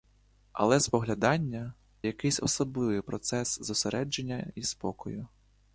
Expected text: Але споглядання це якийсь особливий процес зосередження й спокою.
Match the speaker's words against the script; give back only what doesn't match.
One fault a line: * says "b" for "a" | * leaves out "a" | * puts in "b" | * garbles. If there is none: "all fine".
* leaves out "це"